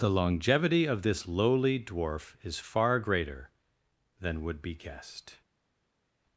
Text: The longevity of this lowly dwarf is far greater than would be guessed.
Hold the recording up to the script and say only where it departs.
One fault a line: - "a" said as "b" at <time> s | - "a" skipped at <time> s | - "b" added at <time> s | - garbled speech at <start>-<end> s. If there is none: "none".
none